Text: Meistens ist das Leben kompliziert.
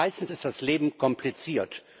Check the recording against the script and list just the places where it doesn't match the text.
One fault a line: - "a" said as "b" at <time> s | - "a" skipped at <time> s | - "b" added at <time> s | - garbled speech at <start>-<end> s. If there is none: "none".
none